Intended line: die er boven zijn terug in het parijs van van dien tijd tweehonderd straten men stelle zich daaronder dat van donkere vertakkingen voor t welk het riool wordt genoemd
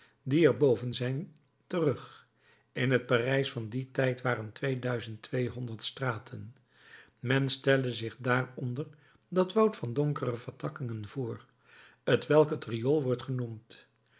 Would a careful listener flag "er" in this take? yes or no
no